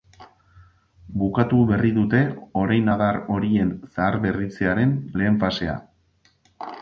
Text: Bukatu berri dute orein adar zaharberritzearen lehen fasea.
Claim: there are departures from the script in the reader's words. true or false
true